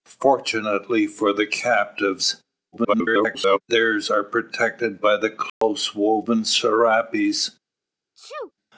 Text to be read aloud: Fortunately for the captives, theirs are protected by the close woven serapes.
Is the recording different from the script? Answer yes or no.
yes